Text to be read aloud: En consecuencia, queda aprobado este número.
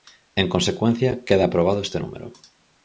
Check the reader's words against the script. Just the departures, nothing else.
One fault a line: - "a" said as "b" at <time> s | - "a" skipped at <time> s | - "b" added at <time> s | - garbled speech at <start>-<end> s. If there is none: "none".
none